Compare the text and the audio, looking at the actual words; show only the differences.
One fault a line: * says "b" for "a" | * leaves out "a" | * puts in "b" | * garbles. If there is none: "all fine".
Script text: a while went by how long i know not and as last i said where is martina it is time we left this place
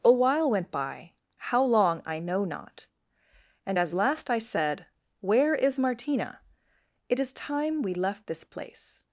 all fine